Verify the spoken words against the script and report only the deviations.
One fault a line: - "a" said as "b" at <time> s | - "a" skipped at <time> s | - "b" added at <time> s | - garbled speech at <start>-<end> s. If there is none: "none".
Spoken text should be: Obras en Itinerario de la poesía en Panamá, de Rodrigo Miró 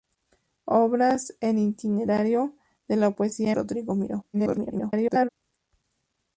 - "en Panamá de" skipped at 3.5 s
- garbled speech at 4.3-5.3 s